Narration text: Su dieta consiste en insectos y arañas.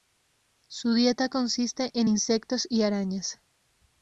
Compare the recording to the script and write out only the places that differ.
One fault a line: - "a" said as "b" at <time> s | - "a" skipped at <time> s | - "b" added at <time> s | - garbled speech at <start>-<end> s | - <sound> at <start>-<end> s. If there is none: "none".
none